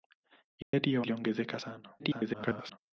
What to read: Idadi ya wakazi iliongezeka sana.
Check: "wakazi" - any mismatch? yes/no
yes